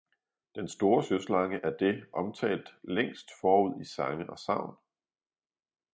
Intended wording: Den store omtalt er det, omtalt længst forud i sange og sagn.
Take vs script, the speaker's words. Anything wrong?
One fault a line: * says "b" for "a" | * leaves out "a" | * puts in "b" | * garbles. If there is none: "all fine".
* says "søslange" for "omtalt"